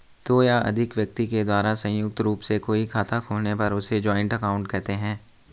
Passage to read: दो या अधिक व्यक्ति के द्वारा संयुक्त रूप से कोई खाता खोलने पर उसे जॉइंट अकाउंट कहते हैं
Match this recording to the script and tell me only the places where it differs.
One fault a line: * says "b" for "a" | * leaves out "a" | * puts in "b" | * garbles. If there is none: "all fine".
all fine